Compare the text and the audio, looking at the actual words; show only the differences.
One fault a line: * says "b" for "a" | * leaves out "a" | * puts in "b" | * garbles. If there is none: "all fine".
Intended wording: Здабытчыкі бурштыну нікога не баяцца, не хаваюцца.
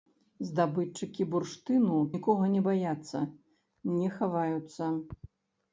all fine